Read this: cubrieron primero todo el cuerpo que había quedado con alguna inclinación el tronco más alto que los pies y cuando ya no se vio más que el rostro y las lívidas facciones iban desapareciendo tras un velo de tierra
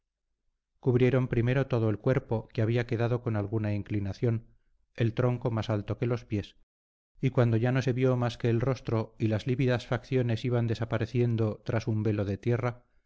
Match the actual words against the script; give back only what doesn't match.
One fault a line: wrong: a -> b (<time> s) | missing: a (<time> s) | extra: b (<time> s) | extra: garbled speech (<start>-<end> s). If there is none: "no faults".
no faults